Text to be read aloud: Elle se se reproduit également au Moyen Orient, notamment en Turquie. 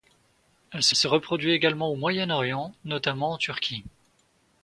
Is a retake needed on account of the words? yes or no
no